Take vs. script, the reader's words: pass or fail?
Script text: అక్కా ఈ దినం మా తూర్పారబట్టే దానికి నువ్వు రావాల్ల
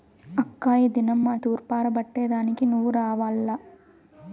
pass